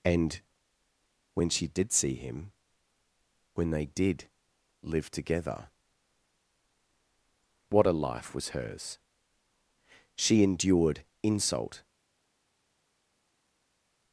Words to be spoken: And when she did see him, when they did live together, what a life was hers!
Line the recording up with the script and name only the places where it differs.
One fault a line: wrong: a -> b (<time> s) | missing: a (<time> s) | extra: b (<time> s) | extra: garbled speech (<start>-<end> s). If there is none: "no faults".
extra: She endured insult (10.2 s)